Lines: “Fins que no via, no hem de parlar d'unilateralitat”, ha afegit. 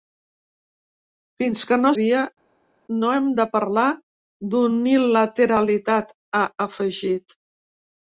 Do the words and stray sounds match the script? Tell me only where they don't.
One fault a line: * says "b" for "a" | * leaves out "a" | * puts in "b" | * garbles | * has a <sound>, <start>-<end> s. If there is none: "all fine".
all fine